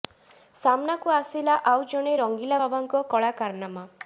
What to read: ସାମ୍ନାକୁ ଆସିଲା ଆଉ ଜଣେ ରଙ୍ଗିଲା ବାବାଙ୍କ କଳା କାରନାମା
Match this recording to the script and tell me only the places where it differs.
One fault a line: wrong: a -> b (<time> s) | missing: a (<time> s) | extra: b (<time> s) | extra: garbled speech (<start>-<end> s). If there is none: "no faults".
no faults